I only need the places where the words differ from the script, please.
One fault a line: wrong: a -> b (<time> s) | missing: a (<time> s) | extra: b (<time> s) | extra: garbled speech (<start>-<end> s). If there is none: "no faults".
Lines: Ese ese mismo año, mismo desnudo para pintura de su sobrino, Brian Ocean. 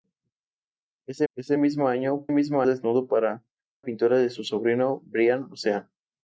no faults